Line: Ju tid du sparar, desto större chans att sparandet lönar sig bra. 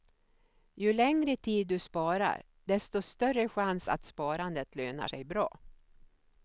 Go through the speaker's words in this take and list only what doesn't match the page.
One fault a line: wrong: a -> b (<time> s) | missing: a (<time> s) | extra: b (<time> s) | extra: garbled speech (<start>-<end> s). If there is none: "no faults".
extra: längre (0.9 s)